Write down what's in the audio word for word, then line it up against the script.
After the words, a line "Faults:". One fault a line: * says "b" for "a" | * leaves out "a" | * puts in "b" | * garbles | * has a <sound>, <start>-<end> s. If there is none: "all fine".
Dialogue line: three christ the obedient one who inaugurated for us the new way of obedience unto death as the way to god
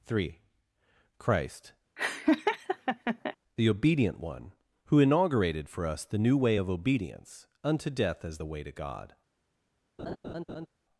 three christ the obedient one who inaugurated for us the new way of obedience unto death as the way to god
Faults:
* has a laugh, 2.0-3.4 s
* has a laugh, 10.0-10.7 s